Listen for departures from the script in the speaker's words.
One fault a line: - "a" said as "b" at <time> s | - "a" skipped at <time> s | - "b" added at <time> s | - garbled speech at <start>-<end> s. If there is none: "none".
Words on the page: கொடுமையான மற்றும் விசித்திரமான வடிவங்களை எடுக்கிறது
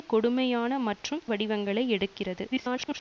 - "விசித்திரமான" skipped at 1.2 s
- garbled speech at 2.5-3.0 s